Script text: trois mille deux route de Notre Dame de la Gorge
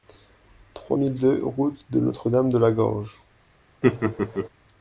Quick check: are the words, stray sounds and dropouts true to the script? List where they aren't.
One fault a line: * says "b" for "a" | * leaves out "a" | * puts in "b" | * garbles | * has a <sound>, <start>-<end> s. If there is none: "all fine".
* has a laugh, 3.8-4.5 s